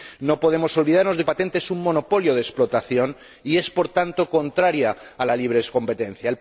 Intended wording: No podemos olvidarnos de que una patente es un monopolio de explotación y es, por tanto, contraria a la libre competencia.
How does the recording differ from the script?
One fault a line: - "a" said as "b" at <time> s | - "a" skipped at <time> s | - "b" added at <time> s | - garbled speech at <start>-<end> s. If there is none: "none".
- "una" skipped at 1.3 s